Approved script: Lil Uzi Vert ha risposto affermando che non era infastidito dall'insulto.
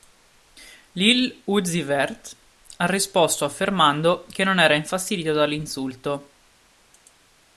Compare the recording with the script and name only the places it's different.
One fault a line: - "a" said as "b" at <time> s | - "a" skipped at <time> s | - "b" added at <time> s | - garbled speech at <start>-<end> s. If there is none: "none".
none